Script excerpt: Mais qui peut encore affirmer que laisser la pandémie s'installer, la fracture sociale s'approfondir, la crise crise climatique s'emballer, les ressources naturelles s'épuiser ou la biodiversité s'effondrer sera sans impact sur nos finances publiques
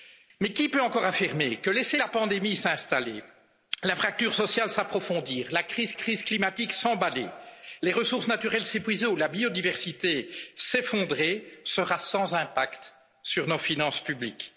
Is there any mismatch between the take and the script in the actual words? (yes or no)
no